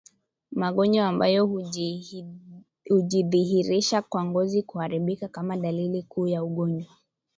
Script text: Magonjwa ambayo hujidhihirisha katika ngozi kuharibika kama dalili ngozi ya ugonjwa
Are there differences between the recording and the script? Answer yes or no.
yes